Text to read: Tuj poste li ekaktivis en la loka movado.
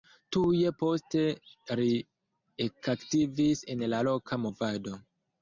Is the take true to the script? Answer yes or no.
yes